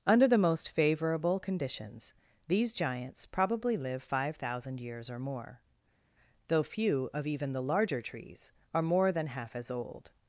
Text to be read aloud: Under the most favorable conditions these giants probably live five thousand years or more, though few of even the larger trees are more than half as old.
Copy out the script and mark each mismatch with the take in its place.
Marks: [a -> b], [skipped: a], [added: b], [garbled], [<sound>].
Under the most favorable conditions these giants probably live five thousand years or more, though few of even the larger trees are more than half as old.